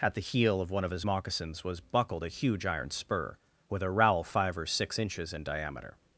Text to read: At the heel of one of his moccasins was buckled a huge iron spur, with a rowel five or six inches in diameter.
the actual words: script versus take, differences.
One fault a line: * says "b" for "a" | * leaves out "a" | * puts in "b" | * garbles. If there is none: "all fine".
all fine